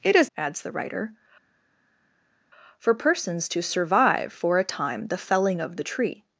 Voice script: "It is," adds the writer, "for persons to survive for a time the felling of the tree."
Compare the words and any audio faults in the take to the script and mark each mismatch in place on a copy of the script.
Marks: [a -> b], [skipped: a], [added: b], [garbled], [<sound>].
"It is," adds the writer, "for persons to survive for a time the felling of the tree."